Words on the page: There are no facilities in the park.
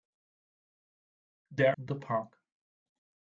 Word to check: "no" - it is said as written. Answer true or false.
false